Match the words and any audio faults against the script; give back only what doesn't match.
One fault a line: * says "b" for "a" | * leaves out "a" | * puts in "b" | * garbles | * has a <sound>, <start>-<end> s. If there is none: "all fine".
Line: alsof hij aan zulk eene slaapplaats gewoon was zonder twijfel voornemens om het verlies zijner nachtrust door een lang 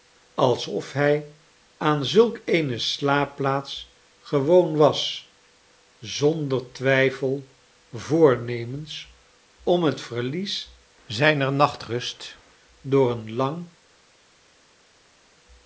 all fine